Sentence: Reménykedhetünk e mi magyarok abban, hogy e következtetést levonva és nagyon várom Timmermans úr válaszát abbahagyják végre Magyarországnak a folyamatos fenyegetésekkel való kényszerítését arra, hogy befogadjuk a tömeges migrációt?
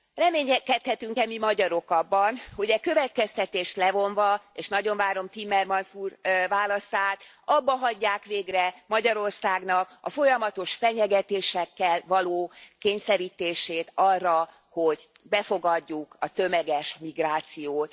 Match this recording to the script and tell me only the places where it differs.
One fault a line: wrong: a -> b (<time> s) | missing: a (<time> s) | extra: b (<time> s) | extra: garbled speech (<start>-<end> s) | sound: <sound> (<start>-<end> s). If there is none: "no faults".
no faults